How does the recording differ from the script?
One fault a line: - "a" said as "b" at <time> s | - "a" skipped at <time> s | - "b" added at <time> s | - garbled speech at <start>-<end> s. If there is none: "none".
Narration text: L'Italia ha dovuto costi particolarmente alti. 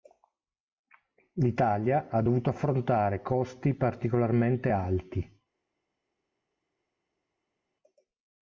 - "affrontare" added at 2.5 s